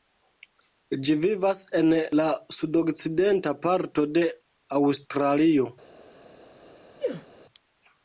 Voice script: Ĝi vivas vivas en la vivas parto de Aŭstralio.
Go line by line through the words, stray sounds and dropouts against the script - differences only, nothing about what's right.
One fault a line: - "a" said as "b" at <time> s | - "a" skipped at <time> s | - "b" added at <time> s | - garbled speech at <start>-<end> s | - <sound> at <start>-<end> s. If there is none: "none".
- "vivas" skipped at 1.6 s
- "vivas" said as "sudokcidenta" at 2.6 s
- sneeze at 7.0-7.3 s